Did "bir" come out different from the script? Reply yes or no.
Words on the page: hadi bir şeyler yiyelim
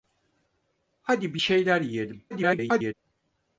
no